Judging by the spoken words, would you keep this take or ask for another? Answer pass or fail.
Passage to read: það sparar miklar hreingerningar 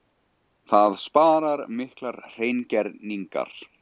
pass